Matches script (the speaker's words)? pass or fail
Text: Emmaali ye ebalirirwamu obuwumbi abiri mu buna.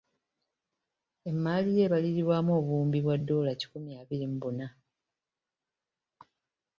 fail